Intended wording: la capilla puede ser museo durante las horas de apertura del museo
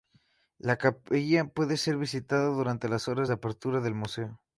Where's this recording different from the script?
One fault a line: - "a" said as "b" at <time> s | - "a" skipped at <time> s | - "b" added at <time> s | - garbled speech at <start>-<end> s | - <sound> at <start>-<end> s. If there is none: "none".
- "museo" said as "visitada" at 2.0 s